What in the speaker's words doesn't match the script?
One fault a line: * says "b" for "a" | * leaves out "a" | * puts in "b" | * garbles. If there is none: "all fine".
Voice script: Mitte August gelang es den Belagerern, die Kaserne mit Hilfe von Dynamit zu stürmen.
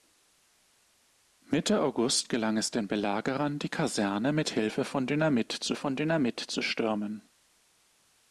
* puts in "von Dynamit zu"